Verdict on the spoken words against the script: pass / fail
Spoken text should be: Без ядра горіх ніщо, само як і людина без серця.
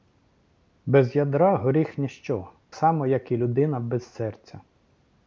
pass